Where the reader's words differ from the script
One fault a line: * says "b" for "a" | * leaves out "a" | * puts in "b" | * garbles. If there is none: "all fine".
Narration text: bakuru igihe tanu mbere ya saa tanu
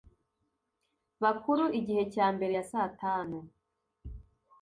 * says "cya" for "tanu"